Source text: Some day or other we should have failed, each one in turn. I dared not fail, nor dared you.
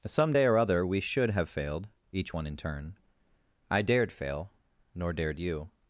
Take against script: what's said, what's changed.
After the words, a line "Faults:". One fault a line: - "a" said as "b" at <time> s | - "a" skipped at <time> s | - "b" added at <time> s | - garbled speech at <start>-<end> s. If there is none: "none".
Some day or other we should have failed, each one in turn. I dared fail, nor dared you.
Faults:
- "not" skipped at 4.1 s